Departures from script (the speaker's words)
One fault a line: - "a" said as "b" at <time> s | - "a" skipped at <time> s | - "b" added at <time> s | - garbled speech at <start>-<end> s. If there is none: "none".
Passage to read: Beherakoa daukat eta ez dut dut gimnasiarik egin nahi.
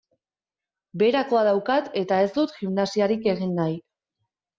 - "dut" skipped at 2.5 s